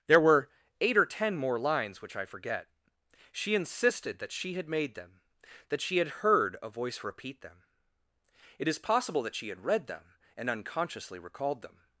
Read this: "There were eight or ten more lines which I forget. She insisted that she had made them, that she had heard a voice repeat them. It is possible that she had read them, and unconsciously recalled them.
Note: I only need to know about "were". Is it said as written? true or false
true